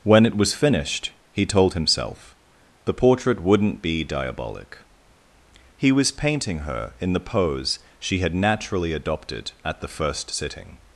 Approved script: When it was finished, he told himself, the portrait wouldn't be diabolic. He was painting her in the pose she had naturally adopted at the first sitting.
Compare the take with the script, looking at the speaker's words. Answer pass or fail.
pass